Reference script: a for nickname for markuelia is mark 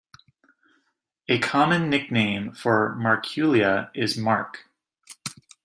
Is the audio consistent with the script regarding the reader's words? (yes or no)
no